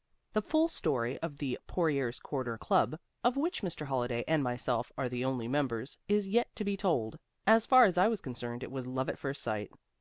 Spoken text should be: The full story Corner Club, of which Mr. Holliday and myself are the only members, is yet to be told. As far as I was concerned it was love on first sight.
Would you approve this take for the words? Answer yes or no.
no